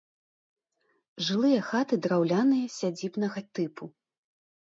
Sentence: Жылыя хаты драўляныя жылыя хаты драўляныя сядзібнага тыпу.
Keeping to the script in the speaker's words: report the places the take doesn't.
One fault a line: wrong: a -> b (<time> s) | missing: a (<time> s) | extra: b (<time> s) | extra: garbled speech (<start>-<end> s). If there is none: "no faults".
missing: жылыя хаты драўляныя (2.7 s)